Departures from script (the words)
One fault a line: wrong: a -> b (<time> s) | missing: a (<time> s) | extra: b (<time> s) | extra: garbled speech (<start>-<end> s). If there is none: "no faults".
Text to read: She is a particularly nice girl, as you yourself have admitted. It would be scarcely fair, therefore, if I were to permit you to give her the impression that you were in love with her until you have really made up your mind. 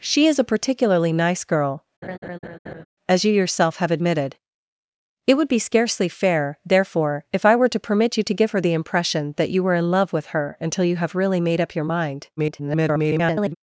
extra: garbled speech (12.4-13.6 s)